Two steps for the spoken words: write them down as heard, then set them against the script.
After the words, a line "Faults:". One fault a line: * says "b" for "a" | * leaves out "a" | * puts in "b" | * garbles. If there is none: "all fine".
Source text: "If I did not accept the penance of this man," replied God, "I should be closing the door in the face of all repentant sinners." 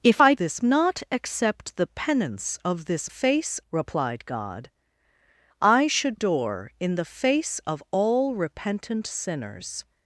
"If I this not accept the penance of this face," replied God, "I should door in the face of all repentant sinners."
Faults:
* says "this" for "did"
* says "face" for "man"
* leaves out "be closing the"